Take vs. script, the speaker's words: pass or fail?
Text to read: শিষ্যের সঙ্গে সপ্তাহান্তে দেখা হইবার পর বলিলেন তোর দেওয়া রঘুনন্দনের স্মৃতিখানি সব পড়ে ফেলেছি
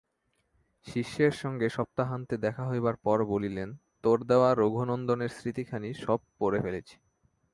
pass